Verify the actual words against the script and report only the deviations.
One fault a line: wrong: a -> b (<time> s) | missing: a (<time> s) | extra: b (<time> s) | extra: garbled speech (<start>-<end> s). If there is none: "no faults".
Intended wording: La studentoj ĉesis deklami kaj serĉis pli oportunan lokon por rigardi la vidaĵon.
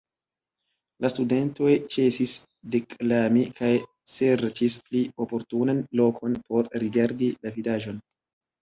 no faults